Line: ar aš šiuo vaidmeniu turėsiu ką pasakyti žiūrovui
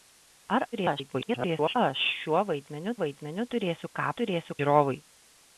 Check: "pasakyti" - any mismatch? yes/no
yes